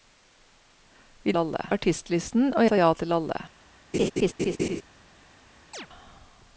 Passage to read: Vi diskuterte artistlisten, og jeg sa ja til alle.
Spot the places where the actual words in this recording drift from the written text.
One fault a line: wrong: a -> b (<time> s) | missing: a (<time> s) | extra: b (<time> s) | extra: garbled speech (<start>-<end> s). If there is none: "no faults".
wrong: diskuterte -> alle (1.4 s)
missing: jeg (2.7 s)